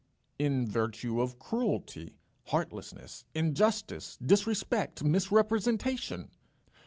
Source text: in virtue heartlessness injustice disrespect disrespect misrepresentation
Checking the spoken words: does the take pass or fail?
fail